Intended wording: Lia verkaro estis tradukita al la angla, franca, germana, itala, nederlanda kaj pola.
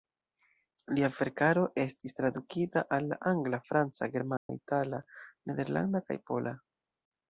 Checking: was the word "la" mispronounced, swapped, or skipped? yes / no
no